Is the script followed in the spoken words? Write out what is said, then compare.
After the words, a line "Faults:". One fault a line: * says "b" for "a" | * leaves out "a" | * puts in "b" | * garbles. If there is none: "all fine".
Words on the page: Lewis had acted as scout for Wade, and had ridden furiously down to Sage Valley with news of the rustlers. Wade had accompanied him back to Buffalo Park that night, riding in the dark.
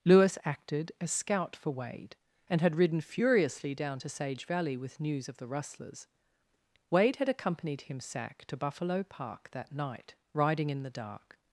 Lewis acted as scout for Wade, and had ridden furiously down to Sage Valley with news of the rustlers. Wade had accompanied him sack to Buffalo Park that night, riding in the dark.
Faults:
* leaves out "had"
* says "sack" for "back"